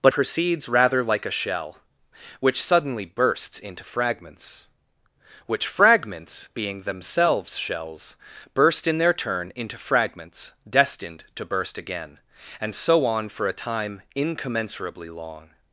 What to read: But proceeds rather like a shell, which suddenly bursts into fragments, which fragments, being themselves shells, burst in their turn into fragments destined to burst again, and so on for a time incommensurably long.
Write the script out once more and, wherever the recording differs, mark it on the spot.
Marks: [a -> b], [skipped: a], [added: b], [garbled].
But proceeds rather like a shell, which suddenly bursts into fragments, which fragments, being themselves shells, burst in their turn into fragments destined to burst again, and so on for a time incommensurably long.